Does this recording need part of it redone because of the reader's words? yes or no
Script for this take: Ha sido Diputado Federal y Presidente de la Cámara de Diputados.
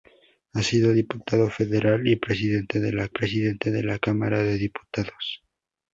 yes